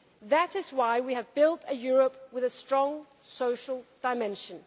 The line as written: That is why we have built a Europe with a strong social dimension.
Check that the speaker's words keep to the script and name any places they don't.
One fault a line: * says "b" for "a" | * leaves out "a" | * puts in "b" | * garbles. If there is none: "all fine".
all fine